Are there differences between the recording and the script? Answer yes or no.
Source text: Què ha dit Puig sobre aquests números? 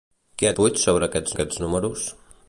yes